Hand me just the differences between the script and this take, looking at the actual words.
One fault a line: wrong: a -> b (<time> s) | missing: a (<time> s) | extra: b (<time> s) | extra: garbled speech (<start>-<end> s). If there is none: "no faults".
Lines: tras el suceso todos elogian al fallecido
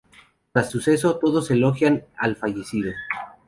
missing: el (0.7 s)